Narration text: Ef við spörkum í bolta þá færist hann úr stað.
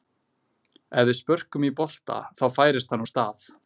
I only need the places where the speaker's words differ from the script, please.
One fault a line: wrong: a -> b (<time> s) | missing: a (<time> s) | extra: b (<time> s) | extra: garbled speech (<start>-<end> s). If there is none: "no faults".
no faults